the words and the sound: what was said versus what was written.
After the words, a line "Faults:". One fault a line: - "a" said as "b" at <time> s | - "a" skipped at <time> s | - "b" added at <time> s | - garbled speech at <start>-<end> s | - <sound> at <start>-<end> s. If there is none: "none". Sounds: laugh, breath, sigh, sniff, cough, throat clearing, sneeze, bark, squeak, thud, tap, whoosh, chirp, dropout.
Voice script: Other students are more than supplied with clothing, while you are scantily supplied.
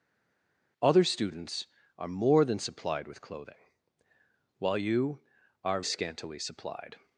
Other students are more than supplied with clothing, while you are scantily supplied.
Faults:
none